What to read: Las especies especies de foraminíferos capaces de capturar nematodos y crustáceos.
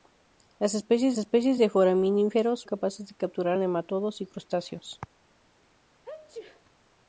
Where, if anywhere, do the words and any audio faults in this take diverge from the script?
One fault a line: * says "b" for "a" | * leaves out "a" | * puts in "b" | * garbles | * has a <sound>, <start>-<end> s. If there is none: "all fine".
* has a sneeze, 6.0-6.7 s